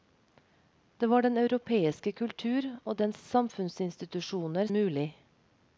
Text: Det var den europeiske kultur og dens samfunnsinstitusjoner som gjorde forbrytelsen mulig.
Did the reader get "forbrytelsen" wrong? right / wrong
wrong